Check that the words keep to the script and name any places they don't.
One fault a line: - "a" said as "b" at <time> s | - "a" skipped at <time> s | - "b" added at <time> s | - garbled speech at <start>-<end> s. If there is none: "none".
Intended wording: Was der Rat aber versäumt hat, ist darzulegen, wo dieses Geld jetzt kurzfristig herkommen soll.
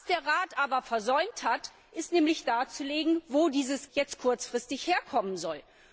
- "Geld" skipped at 3.9 s